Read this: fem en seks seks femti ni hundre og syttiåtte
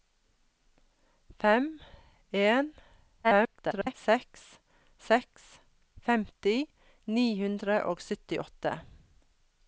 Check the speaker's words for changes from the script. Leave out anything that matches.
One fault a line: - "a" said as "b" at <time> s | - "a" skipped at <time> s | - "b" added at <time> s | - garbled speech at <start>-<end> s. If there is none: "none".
- garbled speech at 3.2-3.9 s